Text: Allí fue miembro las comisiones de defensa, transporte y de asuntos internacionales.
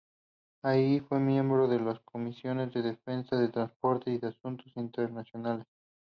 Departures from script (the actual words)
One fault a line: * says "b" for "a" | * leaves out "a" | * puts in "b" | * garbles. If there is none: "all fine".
* puts in "de"
* puts in "de"